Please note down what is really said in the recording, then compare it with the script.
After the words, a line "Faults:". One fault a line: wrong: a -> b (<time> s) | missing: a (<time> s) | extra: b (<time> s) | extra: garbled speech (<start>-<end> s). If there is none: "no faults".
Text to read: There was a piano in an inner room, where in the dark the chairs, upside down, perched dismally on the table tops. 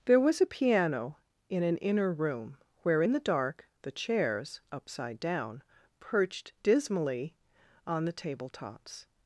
There was a piano in an inner room, where in the dark the chairs, upside down, perched dismally on the table tops.
Faults:
no faults